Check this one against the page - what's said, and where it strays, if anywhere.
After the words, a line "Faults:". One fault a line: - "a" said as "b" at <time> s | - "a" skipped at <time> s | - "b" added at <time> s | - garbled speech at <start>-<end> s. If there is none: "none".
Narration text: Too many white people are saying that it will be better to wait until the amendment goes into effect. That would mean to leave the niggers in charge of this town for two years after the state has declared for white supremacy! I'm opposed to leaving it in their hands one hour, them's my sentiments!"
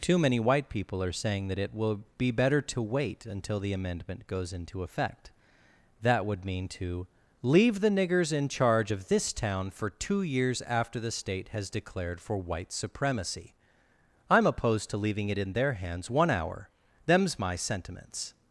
Too many white people are saying that it will be better to wait until the amendment goes into effect. That would mean to leave the niggers in charge of this town for two years after the state has declared for white supremacy! I'm opposed to leaving it in their hands one hour, them's my sentiments!"
Faults:
none